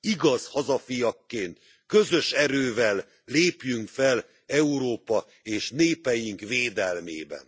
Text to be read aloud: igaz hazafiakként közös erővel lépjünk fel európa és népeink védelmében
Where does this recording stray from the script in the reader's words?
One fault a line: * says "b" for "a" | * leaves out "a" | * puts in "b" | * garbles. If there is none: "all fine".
all fine